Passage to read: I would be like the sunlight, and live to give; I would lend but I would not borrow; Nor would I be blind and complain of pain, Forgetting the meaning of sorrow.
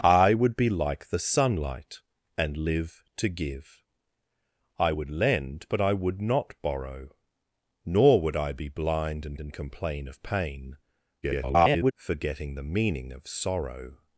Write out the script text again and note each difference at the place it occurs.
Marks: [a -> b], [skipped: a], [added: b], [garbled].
I would be like the sunlight, and live to give; I would lend but I would not borrow; Nor would I be blind and [added: and] complain of pain, [garbled] Forgetting the meaning of sorrow.